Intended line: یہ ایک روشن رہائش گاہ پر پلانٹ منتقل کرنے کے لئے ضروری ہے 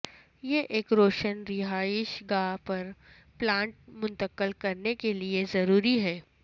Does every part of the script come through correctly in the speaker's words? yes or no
yes